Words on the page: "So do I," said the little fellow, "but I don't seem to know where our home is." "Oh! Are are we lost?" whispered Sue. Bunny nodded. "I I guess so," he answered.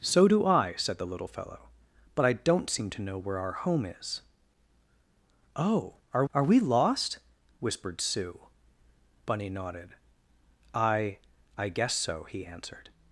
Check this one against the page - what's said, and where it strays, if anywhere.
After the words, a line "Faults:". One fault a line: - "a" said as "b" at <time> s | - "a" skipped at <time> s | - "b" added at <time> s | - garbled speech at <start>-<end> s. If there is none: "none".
"So do I," said the little fellow, "but I don't seem to know where our home is." "Oh! Are are we lost?" whispered Sue. Bunny nodded. "I I guess so," he answered.
Faults:
none